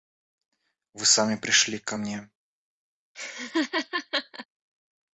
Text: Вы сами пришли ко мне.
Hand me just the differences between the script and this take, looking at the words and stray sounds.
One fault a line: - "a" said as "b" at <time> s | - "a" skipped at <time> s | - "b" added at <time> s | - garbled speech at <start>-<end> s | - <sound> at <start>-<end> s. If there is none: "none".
- laugh at 3.1-4.5 s